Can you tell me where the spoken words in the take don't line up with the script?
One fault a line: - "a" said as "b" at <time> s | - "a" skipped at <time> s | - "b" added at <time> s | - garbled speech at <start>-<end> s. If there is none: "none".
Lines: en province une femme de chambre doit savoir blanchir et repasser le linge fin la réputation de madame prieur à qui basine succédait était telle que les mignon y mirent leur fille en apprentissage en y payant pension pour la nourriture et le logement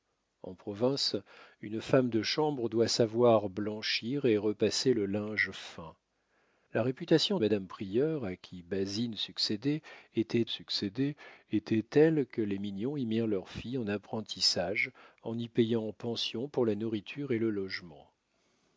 - "de" skipped at 7.4 s
- "succédait était" added at 10.5 s